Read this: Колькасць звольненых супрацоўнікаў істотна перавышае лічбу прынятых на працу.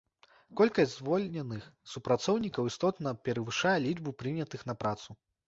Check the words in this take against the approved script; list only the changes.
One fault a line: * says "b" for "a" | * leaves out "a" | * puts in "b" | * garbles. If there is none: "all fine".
all fine